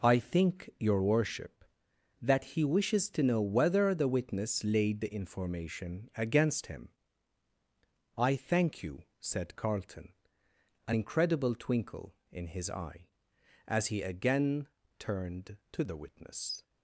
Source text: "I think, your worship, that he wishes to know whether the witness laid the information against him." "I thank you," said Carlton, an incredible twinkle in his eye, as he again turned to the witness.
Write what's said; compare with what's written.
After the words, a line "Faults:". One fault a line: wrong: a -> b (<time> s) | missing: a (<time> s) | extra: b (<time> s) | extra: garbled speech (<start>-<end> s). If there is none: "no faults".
"I think, your worship, that he wishes to know whether the witness laid the information against him." "I thank you," said Carlton, an incredible twinkle in his eye, as he again turned to the witness.
Faults:
no faults